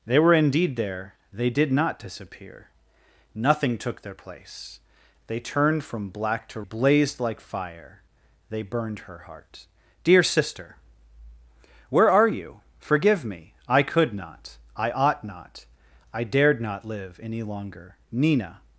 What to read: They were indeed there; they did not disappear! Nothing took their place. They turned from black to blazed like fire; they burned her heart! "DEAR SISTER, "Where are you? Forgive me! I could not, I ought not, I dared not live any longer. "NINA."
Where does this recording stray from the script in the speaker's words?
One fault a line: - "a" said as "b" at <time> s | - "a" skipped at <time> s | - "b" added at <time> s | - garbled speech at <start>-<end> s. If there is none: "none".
none